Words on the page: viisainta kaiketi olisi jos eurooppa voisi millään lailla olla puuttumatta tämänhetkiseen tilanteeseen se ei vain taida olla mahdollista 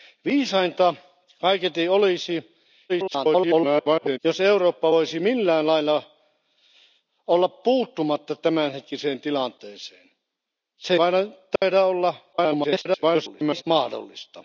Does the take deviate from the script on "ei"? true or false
true